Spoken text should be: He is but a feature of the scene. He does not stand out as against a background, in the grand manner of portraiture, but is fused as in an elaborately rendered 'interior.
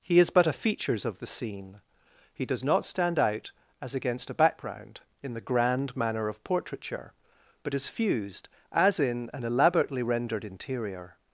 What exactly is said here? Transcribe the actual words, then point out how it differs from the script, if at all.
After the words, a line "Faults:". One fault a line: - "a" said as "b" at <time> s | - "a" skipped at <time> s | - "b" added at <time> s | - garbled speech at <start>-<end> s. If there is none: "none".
He is but a features of the scene. He does not stand out as against a background, in the grand manner of portraiture, but is fused as in an elaborately rendered 'interior.
Faults:
- "feature" said as "features" at 0.5 s